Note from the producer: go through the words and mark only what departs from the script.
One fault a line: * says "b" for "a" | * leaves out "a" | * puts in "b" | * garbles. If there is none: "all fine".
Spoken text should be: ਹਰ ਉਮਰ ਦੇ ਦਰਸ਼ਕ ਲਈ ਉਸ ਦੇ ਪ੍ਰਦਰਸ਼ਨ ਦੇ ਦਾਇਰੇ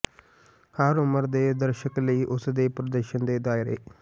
all fine